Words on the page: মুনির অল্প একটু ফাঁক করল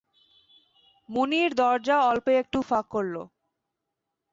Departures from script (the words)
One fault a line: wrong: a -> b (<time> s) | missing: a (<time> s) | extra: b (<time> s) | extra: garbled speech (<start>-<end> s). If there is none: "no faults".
extra: দরজা (1.5 s)